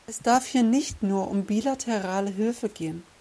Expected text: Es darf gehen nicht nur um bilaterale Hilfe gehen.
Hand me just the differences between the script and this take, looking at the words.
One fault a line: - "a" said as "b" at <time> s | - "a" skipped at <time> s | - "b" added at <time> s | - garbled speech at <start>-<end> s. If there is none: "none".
- "gehen" said as "hier" at 0.5 s